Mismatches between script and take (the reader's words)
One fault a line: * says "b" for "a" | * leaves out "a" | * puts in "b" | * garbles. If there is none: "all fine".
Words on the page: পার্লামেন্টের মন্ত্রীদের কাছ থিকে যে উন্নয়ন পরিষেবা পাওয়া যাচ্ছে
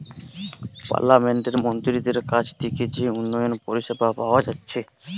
all fine